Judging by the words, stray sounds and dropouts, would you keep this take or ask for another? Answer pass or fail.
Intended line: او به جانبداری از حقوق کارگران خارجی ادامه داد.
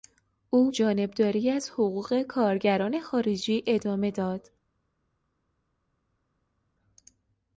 fail